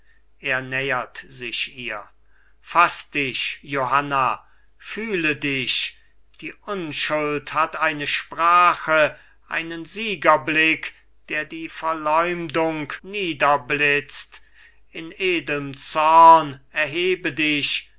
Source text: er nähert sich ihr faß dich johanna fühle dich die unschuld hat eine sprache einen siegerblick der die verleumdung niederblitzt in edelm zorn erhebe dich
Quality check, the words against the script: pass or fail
pass